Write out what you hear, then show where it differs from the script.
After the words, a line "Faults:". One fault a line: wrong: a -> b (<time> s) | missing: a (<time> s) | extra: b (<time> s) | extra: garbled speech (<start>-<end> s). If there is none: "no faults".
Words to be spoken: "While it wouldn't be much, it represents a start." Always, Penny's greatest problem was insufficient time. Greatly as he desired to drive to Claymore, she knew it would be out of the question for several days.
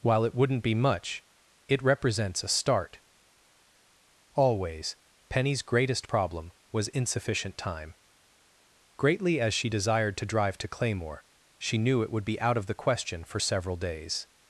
"While it wouldn't be much, it represents a start." Always, Penny's greatest problem was insufficient time. Greatly as she desired to drive to Claymore, she knew it would be out of the question for several days.
Faults:
wrong: he -> she (9.5 s)